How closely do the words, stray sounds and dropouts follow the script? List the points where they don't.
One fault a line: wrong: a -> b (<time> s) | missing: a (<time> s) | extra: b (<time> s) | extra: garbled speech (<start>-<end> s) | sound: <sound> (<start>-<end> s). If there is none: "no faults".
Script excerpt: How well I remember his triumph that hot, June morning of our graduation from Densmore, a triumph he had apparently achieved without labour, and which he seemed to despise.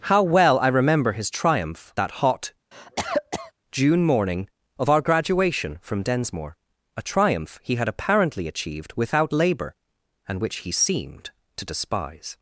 sound: cough (2.7-3.5 s)